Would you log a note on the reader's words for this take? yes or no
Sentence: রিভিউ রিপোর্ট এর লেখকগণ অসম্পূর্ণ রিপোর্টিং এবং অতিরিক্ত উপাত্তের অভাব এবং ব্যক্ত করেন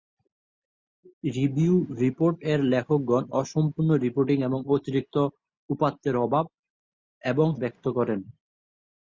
no